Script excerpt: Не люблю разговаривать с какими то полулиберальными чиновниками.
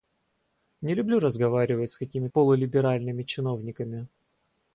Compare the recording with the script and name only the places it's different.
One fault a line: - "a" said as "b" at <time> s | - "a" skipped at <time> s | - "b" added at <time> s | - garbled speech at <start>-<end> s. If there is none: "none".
- "то" skipped at 2.3 s